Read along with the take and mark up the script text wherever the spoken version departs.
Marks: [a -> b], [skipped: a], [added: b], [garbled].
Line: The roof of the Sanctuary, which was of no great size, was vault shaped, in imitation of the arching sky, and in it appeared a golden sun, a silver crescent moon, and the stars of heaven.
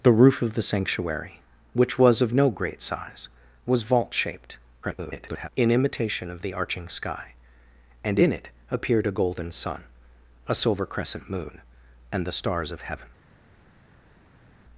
The roof of the Sanctuary, which was of no great size, was vault shaped, [garbled] in imitation of the arching sky, and in it appeared a golden sun, a silver crescent moon, and the stars of heaven.